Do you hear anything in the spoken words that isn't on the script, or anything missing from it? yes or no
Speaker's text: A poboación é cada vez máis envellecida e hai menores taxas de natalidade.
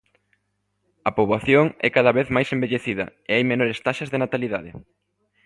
no